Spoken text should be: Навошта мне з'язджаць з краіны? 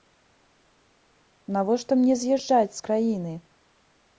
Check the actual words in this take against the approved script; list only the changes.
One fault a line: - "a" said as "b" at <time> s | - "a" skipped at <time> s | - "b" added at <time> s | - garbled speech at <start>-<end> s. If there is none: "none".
none